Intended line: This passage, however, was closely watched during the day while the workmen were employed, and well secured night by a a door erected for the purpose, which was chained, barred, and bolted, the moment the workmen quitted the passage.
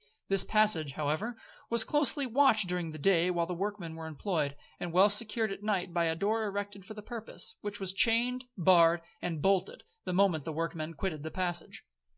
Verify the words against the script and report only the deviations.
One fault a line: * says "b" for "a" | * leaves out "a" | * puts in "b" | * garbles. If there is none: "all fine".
* puts in "at"
* leaves out "a"